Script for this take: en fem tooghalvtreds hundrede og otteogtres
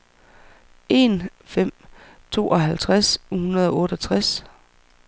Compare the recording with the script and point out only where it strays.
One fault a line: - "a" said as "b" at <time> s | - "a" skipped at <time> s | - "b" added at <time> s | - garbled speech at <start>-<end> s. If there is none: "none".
none